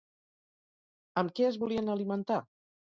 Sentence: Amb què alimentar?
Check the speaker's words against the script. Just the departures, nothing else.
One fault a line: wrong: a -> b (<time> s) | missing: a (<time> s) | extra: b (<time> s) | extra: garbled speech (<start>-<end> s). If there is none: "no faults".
extra: es volien (1.5 s)